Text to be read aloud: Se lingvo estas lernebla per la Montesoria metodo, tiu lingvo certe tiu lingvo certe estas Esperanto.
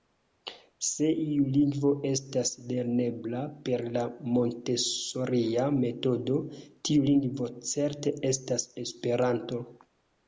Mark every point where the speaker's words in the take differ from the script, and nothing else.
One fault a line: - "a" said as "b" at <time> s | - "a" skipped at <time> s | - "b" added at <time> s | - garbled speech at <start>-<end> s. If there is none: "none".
- "iu" added at 1.2 s
- "tiu lingvo certe" skipped at 8.2 s